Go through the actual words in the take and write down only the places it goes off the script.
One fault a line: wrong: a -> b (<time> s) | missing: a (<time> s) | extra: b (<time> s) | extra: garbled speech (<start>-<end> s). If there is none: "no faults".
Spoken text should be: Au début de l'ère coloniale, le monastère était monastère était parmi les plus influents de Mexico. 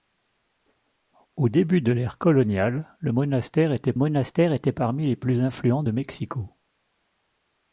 no faults